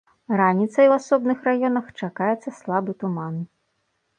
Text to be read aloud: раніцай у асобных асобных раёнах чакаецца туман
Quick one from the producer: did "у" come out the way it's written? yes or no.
yes